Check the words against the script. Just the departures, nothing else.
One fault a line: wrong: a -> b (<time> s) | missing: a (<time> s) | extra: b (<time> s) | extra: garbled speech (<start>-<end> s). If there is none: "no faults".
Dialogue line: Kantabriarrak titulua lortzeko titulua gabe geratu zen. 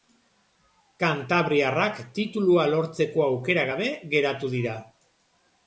wrong: titulua -> aukera (3.3 s)
wrong: zen -> dira (4.6 s)